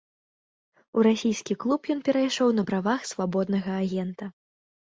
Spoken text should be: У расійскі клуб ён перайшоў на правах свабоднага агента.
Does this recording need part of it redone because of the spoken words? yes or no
no